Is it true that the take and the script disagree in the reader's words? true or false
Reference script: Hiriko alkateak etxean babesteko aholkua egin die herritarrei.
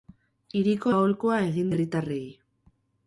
true